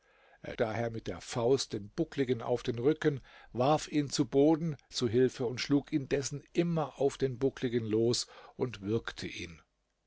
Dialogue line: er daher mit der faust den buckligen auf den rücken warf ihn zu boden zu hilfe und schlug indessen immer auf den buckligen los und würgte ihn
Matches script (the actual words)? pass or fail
pass